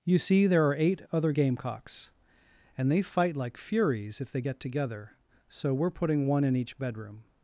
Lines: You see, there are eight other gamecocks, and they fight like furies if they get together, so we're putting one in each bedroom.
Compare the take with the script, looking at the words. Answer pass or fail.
pass